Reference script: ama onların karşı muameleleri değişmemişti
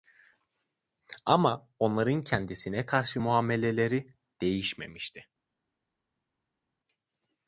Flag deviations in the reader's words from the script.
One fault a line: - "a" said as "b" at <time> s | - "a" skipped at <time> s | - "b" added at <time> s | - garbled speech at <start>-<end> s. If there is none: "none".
- "kendisine" added at 2.2 s